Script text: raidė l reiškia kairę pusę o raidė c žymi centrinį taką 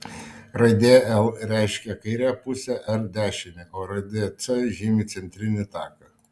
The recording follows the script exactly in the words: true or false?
false